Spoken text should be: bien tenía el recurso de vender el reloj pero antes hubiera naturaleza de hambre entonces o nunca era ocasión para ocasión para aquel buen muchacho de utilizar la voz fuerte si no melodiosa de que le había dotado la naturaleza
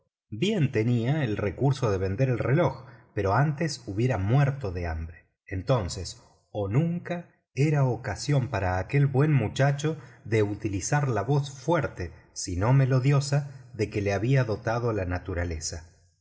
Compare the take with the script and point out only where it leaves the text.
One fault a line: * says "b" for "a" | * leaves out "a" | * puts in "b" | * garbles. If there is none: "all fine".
* says "muerto" for "naturaleza"
* leaves out "ocasión para"